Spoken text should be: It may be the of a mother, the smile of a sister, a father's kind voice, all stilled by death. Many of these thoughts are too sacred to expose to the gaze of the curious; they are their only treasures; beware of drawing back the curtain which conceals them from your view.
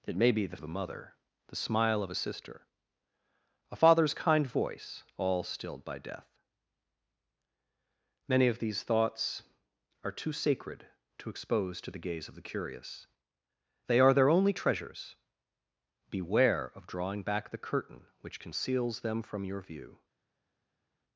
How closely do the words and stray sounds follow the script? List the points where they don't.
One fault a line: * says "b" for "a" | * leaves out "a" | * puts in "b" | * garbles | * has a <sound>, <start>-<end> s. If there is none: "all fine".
all fine